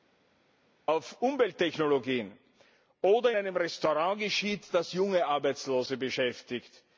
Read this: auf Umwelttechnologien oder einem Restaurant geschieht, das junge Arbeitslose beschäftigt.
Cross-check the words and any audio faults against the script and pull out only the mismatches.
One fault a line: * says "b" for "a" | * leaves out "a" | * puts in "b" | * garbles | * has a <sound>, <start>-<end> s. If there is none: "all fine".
all fine